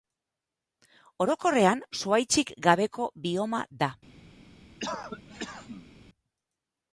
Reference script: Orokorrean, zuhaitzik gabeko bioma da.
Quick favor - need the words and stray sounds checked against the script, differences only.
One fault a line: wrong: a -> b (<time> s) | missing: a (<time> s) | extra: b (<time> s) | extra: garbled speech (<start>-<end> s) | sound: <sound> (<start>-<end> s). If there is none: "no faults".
sound: cough (4.8-5.9 s)